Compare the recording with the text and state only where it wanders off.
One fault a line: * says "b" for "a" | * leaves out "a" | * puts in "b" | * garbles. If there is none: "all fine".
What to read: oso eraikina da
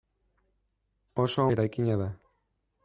all fine